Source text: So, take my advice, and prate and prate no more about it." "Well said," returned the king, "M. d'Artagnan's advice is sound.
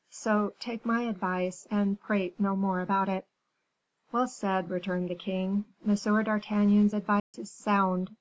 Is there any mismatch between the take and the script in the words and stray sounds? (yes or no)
yes